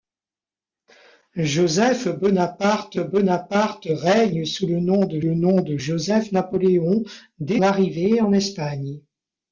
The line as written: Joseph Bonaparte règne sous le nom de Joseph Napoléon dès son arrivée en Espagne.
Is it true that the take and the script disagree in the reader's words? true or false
true